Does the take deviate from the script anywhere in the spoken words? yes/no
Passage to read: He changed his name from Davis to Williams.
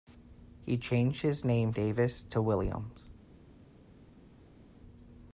yes